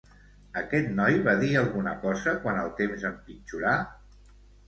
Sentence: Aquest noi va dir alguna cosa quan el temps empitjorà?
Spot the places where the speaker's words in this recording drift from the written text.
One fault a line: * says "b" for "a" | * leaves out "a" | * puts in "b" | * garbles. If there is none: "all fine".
all fine